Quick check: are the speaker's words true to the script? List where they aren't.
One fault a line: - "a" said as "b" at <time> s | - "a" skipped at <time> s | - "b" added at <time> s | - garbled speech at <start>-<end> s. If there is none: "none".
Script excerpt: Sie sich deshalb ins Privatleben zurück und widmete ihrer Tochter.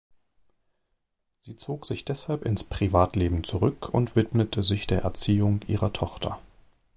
- "zog" added at 1.6 s
- "sich der Erziehung" added at 4.6 s